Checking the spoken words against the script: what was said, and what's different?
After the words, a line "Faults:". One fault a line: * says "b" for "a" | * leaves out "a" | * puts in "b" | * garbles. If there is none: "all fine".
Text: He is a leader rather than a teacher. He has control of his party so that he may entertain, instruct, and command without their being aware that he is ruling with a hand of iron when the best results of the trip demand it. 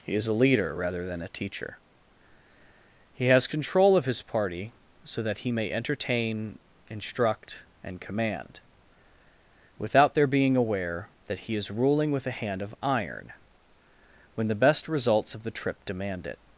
He is a leader rather than a teacher. He has control of his party so that he may entertain, instruct, and command without their being aware that he is ruling with a hand of iron when the best results of the trip demand it.
Faults:
all fine